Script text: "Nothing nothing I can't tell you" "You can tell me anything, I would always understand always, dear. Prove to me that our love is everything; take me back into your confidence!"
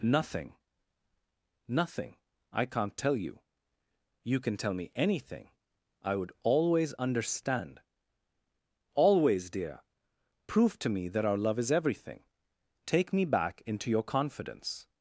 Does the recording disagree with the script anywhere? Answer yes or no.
no